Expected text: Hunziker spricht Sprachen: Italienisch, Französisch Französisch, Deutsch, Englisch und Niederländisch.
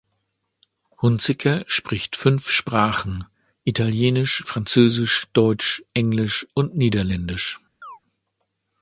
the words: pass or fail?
fail